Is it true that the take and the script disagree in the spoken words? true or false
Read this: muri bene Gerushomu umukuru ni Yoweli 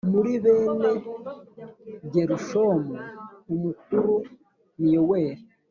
false